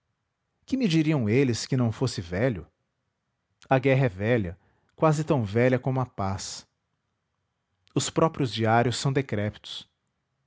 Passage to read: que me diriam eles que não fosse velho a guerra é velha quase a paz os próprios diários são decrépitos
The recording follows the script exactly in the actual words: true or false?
false